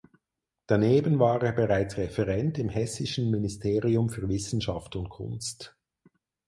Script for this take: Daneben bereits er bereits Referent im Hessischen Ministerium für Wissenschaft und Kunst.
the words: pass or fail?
fail